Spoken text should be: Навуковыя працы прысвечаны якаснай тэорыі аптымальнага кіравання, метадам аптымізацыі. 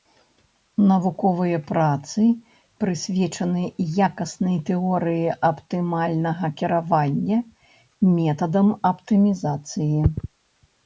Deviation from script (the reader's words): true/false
false